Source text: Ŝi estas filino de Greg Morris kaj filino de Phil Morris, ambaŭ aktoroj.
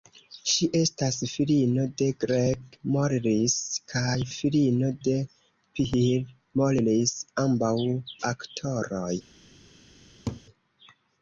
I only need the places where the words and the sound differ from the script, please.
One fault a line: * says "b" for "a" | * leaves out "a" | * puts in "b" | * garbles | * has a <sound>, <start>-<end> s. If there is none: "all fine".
* has a laugh, 10.3-10.4 s